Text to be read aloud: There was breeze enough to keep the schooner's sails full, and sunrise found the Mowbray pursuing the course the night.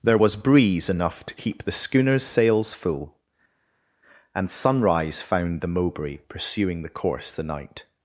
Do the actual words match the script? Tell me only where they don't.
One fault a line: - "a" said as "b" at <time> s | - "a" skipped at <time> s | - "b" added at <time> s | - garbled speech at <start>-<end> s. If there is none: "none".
none